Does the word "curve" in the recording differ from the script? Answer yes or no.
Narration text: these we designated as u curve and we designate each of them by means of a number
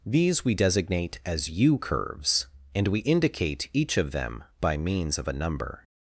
yes